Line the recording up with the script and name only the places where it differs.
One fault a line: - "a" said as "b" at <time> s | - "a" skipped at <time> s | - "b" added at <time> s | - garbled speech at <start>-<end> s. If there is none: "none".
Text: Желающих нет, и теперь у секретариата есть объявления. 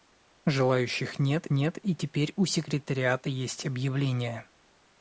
- "нет" added at 1.5 s